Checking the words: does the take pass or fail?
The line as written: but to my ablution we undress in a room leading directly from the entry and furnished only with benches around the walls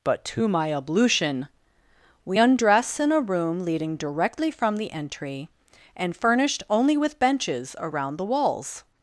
pass